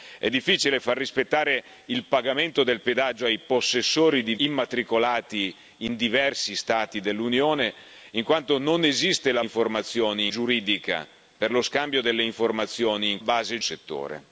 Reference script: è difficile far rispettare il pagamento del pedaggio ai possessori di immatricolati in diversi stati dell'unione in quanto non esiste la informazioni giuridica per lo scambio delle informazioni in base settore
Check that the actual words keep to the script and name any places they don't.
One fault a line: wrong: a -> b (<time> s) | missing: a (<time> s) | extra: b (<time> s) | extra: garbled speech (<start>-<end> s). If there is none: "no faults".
no faults